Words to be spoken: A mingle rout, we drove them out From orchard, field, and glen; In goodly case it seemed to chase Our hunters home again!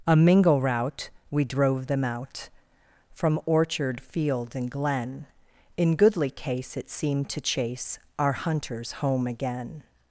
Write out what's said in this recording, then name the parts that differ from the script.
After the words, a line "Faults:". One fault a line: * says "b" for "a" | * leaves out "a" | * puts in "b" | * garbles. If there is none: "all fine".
A mingle rout, we drove them out From orchard, field, and glen; In goodly case it seemed to chase Our hunters home again!
Faults:
all fine